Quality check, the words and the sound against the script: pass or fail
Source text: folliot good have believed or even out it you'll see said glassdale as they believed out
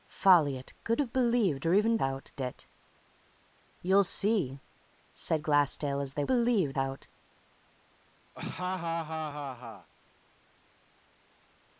fail